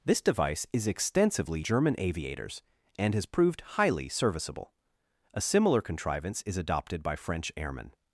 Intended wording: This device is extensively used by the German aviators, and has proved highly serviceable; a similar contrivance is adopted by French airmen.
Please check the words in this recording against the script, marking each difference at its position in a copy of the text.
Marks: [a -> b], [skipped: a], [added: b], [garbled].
This device is extensively [skipped: used by the] German aviators, and has proved highly serviceable; a similar contrivance is adopted by French airmen.